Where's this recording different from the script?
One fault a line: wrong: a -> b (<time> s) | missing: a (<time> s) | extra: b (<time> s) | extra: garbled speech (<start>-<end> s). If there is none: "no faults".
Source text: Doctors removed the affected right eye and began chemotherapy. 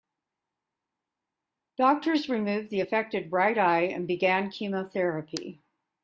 no faults